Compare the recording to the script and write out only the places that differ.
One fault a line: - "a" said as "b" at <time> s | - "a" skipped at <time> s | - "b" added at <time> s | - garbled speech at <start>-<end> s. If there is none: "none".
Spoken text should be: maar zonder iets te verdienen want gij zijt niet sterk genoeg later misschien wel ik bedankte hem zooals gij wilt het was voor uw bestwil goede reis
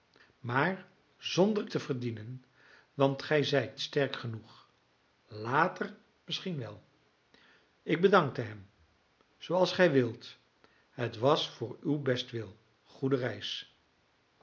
- "iets" skipped at 1.7 s
- "niet" skipped at 3.8 s